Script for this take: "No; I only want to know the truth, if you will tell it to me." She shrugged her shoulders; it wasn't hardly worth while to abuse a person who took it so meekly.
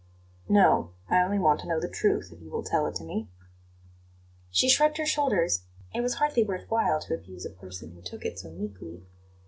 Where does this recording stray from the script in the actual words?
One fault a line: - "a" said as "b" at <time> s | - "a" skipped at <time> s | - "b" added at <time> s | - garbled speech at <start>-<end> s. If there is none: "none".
- "wasn't" said as "was" at 6.0 s